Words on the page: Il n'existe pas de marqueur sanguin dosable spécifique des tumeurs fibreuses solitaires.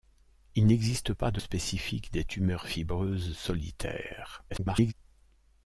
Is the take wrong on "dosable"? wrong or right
wrong